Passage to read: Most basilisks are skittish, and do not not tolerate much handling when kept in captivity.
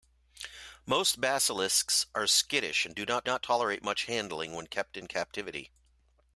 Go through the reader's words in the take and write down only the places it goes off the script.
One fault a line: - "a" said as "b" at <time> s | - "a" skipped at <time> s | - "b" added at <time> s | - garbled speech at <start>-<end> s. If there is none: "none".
none